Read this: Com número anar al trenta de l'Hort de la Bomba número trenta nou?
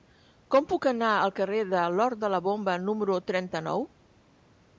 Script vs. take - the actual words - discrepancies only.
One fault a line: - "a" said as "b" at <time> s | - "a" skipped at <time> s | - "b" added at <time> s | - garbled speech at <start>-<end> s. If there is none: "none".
- "número" said as "puc" at 0.7 s
- "trenta" said as "carrer" at 1.4 s